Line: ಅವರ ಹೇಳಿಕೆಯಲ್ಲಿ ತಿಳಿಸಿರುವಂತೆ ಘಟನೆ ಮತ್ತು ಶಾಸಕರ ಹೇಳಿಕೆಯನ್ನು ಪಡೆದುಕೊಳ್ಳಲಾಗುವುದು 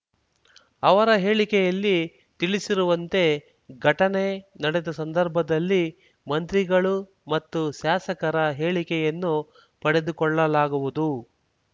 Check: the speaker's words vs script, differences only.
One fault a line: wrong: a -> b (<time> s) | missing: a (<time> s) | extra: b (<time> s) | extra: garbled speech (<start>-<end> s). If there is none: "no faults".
extra: ನಡೆದ ಸಂದರ್ಭದಲ್ಲಿ ಮಂತ್ರಿಗಳು (4.6 s)